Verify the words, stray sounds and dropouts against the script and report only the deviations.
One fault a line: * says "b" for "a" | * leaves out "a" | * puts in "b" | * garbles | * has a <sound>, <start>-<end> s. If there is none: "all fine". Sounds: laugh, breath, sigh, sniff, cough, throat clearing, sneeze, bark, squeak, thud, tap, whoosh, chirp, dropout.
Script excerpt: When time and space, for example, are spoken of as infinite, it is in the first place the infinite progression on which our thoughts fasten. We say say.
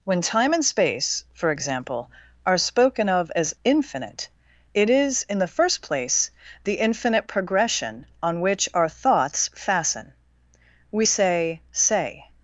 all fine